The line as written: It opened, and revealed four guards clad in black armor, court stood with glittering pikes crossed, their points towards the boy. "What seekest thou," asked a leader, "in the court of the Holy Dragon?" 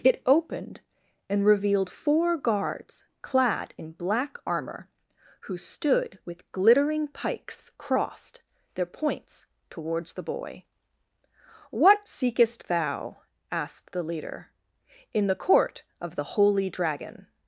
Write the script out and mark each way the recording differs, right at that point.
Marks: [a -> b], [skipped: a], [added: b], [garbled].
It opened, and revealed four guards clad in black armor, [court -> who] stood with glittering pikes crossed, their points towards the boy. "What seekest thou," asked [a -> the] leader, "in the court of the Holy Dragon?"